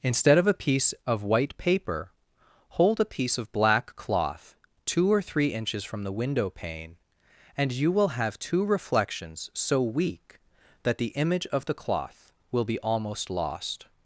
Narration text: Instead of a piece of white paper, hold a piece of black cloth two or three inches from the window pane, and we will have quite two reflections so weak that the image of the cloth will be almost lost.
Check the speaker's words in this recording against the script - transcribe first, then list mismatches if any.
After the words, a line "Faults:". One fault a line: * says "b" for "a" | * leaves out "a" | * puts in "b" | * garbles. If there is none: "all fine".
Instead of a piece of white paper, hold a piece of black cloth two or three inches from the window pane, and you will have two reflections so weak that the image of the cloth will be almost lost.
Faults:
* says "you" for "we"
* leaves out "quite"